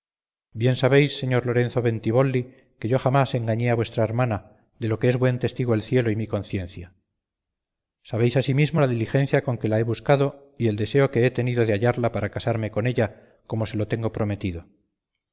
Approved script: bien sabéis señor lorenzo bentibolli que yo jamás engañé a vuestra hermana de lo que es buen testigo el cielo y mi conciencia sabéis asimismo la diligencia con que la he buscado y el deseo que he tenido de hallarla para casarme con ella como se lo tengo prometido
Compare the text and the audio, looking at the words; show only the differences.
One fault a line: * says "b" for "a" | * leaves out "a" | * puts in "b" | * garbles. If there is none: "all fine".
all fine